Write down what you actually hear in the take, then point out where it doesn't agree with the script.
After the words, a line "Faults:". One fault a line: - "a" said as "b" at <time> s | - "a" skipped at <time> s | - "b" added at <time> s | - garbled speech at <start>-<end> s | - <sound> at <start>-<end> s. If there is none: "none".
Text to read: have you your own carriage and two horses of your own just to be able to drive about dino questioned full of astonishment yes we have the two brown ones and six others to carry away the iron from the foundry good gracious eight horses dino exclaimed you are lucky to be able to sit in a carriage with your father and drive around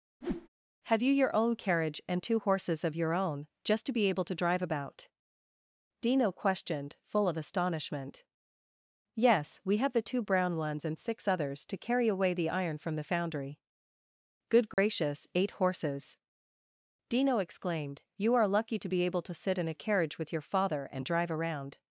have you your own carriage and two horses of your own just to be able to drive about dino questioned full of astonishment yes we have the two brown ones and six others to carry away the iron from the foundry good gracious eight horses dino exclaimed you are lucky to be able to sit in a carriage with your father and drive around
Faults:
- whoosh at 0.2-0.5 s
- dropout at 14.7-14.8 s